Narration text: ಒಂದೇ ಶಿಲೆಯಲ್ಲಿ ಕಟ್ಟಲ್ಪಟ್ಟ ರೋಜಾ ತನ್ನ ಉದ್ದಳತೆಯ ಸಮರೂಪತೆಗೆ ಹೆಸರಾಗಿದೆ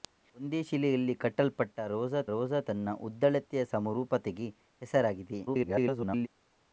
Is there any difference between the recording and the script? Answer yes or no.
yes